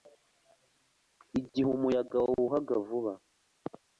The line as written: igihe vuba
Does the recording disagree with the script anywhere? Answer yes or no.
yes